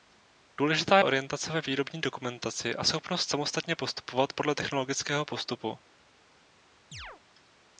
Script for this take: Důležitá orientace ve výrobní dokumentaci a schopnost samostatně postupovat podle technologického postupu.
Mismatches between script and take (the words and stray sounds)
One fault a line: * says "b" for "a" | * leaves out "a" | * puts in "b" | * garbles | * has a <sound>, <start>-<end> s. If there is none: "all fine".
* has a chirp, 6.9-7.2 s